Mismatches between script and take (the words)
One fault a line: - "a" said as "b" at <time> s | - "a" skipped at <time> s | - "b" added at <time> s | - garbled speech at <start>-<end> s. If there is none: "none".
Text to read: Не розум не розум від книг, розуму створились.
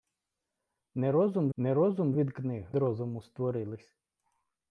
none